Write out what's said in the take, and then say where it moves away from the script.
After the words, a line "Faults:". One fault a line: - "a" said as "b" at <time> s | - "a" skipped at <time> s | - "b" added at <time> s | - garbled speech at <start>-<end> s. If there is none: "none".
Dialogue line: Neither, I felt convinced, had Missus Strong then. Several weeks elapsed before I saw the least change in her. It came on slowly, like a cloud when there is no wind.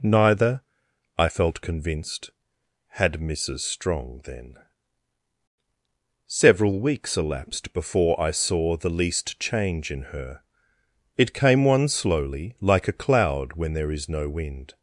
Neither, I felt convinced, had Missus Strong then. Several weeks elapsed before I saw the least change in her. It came one slowly, like a cloud when there is no wind.
Faults:
- "on" said as "one" at 11.6 s